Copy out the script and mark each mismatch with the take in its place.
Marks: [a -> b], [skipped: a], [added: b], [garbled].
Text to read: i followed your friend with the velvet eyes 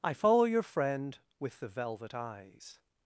i [followed -> follow] your friend with the velvet eyes